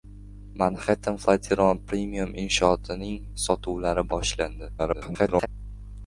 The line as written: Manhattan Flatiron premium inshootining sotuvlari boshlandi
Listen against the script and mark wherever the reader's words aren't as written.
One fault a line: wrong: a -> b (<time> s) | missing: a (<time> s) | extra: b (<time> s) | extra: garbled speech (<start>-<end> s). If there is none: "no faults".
extra: garbled speech (4.8-5.5 s)